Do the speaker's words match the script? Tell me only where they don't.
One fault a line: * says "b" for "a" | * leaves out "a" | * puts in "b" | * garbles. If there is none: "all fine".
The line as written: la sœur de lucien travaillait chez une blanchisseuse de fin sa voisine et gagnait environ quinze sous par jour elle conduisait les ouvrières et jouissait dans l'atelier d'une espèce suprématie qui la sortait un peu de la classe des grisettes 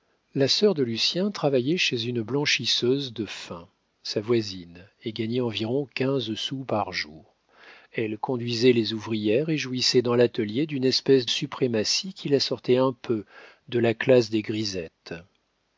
all fine